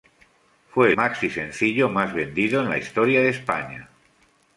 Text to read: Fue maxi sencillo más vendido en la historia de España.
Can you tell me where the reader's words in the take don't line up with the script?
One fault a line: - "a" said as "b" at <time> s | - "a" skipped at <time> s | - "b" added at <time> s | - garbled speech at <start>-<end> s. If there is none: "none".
none